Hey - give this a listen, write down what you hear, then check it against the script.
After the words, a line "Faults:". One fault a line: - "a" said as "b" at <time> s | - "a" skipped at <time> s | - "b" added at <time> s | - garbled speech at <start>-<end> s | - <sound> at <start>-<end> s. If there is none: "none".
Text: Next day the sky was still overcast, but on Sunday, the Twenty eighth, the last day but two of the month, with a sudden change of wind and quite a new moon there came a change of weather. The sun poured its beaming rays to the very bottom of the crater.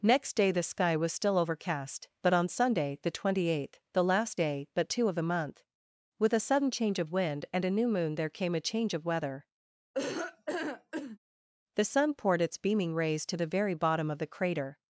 Next day the sky was still overcast, but on Sunday, the Twenty eighth, the last day but two of the month, with a sudden change of wind and a new moon there came a change of weather. The sun poured its beaming rays to the very bottom of the crater.
Faults:
- "quite" skipped at 7.6 s
- laugh at 9.9-11.2 s